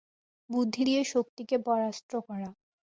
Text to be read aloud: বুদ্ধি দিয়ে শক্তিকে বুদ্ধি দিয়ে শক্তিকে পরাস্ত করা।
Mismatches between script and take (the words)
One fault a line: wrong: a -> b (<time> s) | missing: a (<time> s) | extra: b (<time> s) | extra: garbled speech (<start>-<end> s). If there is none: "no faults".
missing: বুদ্ধি দিয়ে শক্তিকে (1.6 s)